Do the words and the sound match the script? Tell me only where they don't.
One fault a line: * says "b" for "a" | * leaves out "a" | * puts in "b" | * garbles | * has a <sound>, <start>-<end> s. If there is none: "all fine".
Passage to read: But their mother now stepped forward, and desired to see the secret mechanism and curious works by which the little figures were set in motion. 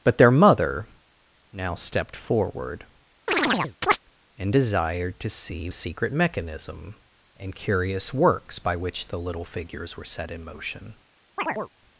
* has a chirp, 3.3-4.0 s
* leaves out "the"
* has a chirp, 11.4-11.7 s